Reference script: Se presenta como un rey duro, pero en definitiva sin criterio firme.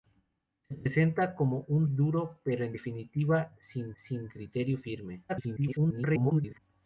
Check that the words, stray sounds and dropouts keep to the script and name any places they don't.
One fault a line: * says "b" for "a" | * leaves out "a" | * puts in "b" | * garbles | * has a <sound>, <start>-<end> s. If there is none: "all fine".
* leaves out "rey"
* puts in "sin"
* garbles